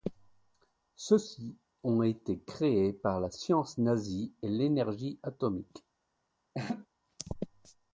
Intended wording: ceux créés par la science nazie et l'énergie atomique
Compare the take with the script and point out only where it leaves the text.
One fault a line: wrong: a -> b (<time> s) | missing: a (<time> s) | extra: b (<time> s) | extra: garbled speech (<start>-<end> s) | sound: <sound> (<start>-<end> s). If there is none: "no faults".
extra: ci ont été (1.2 s)
sound: laugh (6.5-6.9 s)